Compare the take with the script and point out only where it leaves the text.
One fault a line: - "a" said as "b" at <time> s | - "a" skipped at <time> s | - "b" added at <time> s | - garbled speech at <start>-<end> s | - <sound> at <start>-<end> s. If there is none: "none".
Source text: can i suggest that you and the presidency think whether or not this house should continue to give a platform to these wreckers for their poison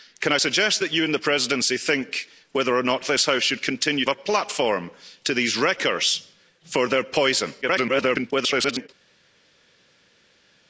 - "to give" skipped at 4.0 s
- garbled speech at 7.6-8.9 s